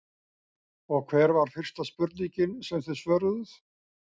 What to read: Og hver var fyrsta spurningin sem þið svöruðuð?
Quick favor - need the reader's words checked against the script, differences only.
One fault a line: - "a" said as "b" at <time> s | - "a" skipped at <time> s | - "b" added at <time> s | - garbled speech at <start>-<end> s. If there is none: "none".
none